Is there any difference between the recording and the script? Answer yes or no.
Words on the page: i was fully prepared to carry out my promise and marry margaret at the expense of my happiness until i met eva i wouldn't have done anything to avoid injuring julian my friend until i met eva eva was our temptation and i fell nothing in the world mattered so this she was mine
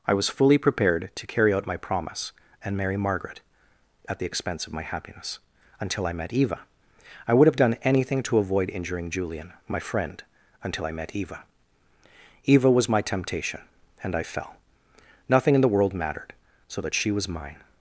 yes